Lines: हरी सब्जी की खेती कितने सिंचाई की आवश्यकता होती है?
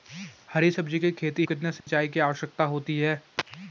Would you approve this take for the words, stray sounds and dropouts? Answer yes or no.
no